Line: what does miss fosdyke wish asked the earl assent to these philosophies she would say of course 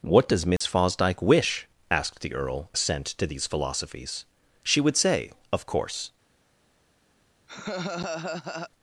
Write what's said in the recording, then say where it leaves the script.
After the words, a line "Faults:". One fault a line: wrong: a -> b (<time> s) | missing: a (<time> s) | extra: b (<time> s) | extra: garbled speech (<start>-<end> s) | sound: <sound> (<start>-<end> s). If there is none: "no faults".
what does miss fosdyke wish asked the earl assent to these philosophies she would say of course
Faults:
sound: dropout (0.6-0.6 s)
sound: laugh (7.5-8.7 s)